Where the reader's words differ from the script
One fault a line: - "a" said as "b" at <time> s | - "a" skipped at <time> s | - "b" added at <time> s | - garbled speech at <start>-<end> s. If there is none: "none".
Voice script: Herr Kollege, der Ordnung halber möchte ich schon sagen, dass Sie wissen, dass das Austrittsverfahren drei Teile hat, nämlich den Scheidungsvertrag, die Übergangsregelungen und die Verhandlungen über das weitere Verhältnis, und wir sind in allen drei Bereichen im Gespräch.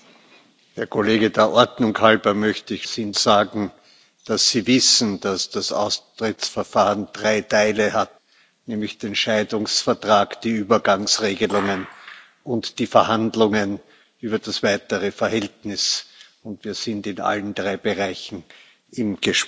- "schon" said as "sind" at 2.8 s